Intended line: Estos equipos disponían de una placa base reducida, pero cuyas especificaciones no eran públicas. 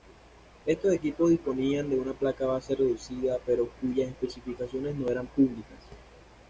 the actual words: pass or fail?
pass